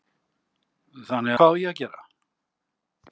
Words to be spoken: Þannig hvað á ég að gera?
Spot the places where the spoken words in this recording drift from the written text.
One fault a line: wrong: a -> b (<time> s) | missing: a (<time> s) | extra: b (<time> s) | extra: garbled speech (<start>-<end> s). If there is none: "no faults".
no faults